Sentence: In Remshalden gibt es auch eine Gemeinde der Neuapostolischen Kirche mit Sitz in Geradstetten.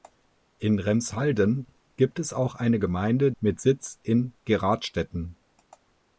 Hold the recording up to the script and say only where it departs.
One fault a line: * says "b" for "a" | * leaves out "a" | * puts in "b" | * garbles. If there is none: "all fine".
* leaves out "der Neuapostolischen Kirche"